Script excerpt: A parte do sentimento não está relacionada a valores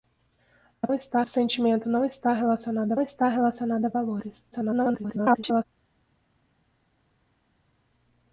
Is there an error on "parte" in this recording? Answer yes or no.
yes